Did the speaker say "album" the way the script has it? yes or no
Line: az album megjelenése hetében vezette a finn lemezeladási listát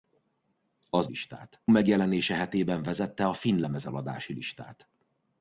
no